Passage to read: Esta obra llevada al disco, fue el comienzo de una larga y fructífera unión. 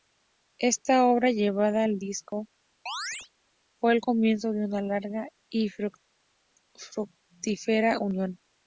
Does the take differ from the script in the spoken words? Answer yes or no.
no